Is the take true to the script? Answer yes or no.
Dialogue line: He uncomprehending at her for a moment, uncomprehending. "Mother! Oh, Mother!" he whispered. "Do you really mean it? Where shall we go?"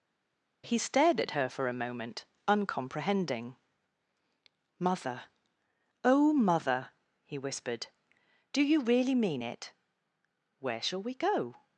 no